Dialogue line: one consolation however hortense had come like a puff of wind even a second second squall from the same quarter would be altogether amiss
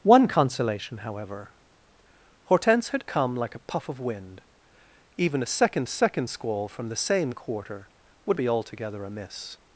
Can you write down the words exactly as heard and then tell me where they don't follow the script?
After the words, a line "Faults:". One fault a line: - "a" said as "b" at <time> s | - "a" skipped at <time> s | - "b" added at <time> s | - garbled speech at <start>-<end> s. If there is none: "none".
one consolation however hortense had come like a puff of wind even a second second squall from the same quarter would be altogether amiss
Faults:
none